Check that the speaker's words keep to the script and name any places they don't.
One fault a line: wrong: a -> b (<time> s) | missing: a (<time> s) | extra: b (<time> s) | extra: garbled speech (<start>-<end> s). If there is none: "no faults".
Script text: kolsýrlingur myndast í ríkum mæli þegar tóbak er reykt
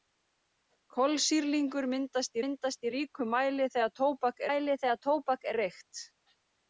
extra: myndast (2.4 s)
extra: mæli þegar tóbak (4.5 s)